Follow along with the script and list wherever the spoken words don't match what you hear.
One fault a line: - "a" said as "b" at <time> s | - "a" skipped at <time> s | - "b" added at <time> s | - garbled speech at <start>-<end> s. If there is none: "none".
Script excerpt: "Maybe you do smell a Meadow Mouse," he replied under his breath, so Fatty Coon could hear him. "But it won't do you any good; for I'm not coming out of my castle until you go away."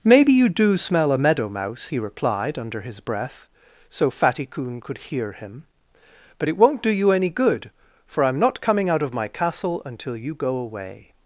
none